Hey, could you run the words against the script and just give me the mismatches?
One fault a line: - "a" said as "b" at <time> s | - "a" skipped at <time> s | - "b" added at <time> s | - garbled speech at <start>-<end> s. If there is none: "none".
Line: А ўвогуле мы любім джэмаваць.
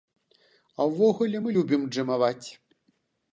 none